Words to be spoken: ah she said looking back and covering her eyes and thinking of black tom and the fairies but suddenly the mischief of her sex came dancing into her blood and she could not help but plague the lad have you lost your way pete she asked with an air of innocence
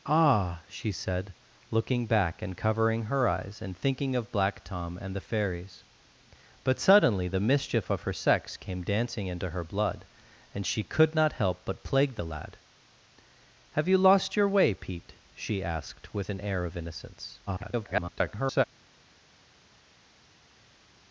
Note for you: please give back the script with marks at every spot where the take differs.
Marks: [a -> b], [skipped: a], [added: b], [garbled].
ah she said looking back and covering her eyes and thinking of black tom and the fairies but suddenly the mischief of her sex came dancing into her blood and she could not help but plague the lad have you lost your way pete she asked with an air of innocence [garbled]